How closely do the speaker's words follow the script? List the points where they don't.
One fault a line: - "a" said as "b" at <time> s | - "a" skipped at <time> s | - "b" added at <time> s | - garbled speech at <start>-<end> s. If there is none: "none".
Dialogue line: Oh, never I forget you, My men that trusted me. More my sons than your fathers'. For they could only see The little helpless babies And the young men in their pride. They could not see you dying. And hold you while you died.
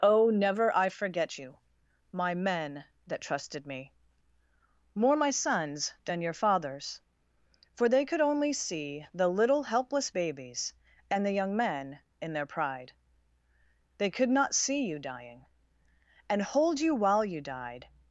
none